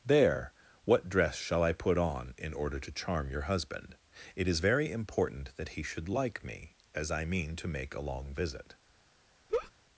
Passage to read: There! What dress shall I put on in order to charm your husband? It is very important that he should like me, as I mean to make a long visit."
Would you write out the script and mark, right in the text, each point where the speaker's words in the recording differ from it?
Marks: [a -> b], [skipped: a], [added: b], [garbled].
There! What dress shall I put on in order to charm your husband? It is very important that he should like me, as I mean to make a long visit."